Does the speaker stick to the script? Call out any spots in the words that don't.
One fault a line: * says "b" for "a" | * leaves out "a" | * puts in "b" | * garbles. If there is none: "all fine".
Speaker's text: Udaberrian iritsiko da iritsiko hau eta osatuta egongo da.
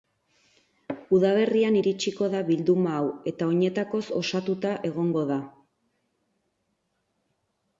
* says "bilduma" for "iritsiko"
* puts in "oinetakoz"